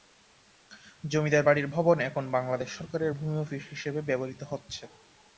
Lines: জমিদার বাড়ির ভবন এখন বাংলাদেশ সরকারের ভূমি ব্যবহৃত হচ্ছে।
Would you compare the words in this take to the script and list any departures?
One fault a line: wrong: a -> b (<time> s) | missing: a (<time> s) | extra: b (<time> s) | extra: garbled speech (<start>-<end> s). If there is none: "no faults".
extra: অফিস হিসেবে (3.4 s)